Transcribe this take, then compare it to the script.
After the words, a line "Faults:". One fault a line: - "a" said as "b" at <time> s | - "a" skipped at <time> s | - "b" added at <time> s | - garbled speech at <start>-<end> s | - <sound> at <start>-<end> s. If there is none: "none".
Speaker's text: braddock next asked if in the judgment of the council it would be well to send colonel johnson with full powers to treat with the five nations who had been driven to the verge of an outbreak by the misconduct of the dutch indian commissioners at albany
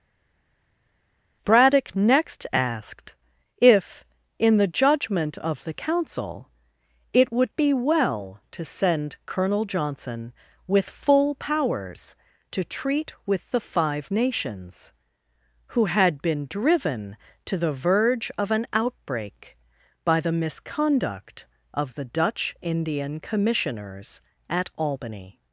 braddock next asked if in the judgment of the council it would be well to send colonel johnson with full powers to treat with the five nations who had been driven to the verge of an outbreak by the misconduct of the dutch indian commissioners at albany
Faults:
none